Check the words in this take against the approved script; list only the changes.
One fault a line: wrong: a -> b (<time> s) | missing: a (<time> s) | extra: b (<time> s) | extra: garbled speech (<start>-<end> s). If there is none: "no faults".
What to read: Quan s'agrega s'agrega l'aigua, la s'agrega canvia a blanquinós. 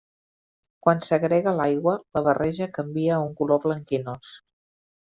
missing: s'agrega (1.5 s)
wrong: s'agrega -> barreja (2.3 s)
extra: un color (3.2 s)